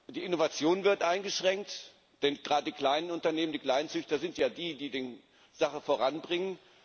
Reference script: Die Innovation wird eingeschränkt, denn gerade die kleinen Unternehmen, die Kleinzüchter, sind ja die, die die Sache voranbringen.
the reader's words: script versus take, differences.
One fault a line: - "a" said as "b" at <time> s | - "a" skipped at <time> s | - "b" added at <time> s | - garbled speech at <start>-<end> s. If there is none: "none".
none